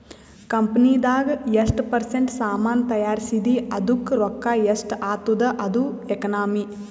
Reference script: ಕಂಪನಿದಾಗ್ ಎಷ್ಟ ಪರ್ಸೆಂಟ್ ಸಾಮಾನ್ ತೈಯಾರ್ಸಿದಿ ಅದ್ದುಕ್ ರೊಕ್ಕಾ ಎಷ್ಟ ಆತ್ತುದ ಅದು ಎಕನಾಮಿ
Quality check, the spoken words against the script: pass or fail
pass